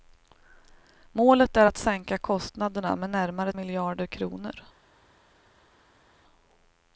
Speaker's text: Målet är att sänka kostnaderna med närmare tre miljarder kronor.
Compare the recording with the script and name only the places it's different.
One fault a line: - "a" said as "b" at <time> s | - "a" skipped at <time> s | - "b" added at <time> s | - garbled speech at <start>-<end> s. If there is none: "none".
- "tre" skipped at 3.5 s